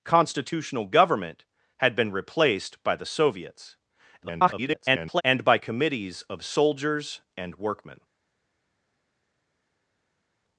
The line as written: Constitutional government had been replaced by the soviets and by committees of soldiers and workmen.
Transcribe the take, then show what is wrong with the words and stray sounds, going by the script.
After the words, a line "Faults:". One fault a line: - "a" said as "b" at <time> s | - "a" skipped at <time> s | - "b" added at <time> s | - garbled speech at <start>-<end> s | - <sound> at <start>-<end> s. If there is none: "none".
Constitutional government had been replaced by the soviets [garbled] and by committees of soldiers and workmen.
Faults:
- garbled speech at 4.2-5.2 s